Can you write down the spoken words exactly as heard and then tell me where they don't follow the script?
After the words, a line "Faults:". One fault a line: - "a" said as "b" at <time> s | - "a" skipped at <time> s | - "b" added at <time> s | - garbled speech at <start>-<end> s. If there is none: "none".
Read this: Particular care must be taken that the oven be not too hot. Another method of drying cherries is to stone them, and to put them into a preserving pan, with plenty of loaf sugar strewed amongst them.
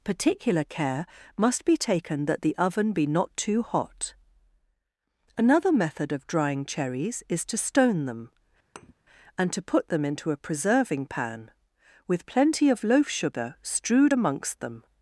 Particular care must be taken that the oven be not too hot. Another method of drying cherries is to stone them, and to put them into a preserving pan, with plenty of loaf sugar strewed amongst them.
Faults:
none